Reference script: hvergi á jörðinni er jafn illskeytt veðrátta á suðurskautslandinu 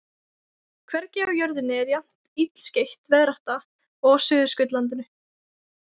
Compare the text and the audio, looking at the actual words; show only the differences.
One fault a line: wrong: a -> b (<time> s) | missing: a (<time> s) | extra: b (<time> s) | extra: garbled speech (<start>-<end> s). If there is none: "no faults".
extra: og (3.6 s)